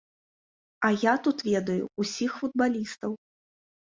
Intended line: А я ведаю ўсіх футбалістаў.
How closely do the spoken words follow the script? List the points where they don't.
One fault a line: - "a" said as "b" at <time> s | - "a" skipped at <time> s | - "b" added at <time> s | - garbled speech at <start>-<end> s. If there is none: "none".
- "тут" added at 1.3 s